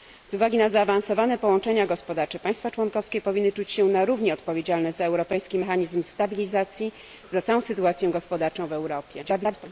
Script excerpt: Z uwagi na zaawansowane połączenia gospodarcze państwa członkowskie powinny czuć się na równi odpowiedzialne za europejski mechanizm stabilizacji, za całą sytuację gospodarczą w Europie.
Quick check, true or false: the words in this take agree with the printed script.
false